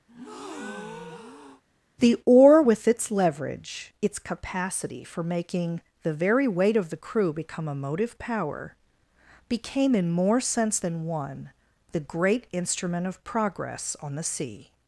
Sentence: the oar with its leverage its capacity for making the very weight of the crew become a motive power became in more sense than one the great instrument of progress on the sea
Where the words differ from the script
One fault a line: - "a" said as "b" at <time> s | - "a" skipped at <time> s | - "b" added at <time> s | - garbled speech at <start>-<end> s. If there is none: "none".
none